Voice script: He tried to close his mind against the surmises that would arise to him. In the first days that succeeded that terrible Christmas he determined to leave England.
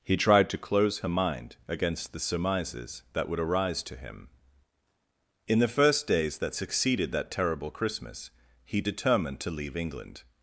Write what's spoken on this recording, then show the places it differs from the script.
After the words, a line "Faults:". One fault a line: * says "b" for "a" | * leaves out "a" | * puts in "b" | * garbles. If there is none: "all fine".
He tried to close her mind against the surmises that would arise to him. In the first days that succeeded that terrible Christmas he determined to leave England.
Faults:
* says "her" for "his"